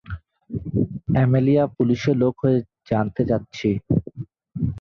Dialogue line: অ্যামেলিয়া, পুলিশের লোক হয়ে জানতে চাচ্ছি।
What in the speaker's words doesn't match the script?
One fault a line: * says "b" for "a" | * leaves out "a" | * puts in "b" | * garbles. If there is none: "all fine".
all fine